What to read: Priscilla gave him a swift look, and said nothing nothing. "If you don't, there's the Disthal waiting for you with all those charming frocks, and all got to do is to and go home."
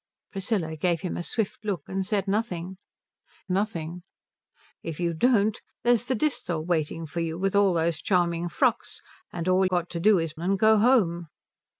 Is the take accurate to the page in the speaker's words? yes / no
yes